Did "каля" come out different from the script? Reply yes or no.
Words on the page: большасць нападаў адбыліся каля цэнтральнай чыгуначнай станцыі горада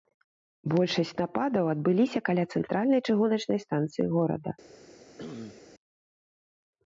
no